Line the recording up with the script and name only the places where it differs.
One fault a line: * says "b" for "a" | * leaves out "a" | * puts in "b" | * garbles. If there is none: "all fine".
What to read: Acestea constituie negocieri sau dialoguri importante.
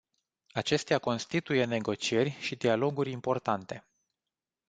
* says "și" for "sau"